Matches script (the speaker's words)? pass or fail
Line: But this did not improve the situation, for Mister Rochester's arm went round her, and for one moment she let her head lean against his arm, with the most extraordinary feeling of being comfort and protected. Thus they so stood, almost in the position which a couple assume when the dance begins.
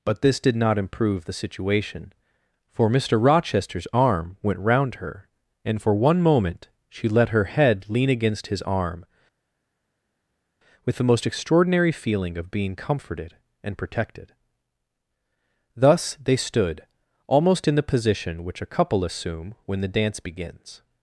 fail